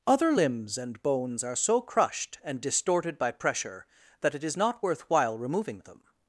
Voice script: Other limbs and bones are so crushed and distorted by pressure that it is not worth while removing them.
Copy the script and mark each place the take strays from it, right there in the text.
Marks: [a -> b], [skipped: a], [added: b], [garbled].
Other limbs and bones are so crushed and distorted by pressure that it is not worth while removing them.